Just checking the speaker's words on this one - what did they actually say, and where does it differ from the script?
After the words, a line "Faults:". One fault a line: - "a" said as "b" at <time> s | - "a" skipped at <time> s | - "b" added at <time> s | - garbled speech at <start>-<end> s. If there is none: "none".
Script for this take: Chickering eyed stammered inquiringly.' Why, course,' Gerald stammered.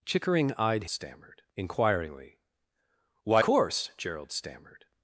Chickering eyed stammered inquiringly.' Why, course,' Gerald stammered.
Faults:
none